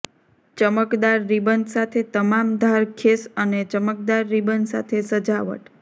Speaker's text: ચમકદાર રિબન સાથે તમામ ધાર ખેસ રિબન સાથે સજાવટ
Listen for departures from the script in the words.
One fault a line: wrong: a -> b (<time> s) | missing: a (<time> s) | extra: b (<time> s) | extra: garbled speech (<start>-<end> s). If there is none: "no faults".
extra: અને ચમકદાર (3.4 s)